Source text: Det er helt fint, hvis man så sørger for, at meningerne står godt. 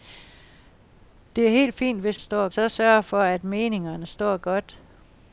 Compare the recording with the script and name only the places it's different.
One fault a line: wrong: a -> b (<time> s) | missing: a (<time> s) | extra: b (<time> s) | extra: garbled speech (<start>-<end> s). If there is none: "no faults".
wrong: man -> står (2.2 s)